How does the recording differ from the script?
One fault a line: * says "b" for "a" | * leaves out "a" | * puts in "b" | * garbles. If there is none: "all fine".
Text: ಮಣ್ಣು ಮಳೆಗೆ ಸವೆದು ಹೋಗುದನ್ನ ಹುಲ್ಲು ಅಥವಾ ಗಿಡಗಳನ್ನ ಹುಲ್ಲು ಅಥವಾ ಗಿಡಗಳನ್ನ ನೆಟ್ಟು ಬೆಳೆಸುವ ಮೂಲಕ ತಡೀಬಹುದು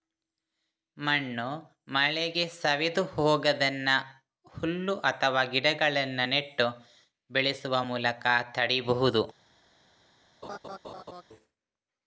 * leaves out "ಹುಲ್ಲು ಅಥವಾ ಗಿಡಗಳನ್ನ"